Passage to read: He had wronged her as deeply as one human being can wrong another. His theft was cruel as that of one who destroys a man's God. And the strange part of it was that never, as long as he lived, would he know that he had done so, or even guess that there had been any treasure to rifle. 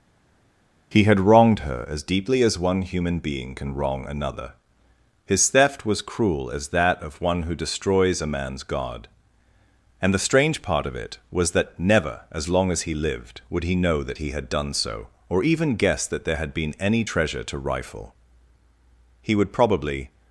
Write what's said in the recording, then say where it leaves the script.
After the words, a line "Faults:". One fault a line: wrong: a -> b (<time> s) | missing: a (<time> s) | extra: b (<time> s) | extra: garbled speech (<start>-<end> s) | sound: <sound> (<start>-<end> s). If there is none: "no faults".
He had wronged her as deeply as one human being can wrong another. His theft was cruel as that of one who destroys a man's God. And the strange part of it was that never, as long as he lived, would he know that he had done so, or even guess that there had been any treasure to rifle. He would probably
Faults:
extra: He would probably (19.2 s)